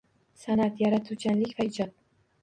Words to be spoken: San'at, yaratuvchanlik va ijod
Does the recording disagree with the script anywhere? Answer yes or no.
no